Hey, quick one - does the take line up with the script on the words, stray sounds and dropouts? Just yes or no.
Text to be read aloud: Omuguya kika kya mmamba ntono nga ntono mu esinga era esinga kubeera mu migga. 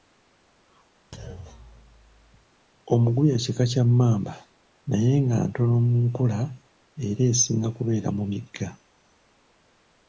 no